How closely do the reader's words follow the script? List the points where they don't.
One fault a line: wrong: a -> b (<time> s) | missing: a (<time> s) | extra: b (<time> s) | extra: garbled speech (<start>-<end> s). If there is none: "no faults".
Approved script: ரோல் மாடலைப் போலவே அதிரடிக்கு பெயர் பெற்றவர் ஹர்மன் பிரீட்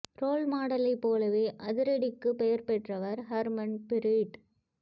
no faults